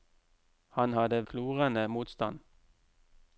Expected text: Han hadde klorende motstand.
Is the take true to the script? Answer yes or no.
yes